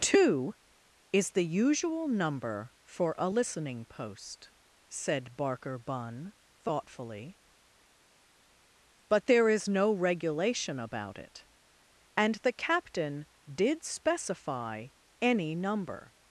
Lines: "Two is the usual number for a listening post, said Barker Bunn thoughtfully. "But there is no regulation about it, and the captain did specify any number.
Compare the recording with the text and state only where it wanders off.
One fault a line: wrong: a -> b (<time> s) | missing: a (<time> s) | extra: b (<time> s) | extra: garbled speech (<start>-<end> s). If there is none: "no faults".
no faults